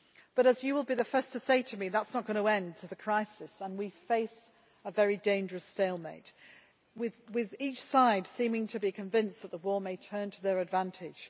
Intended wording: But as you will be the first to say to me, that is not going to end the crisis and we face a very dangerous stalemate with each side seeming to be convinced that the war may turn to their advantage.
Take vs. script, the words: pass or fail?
pass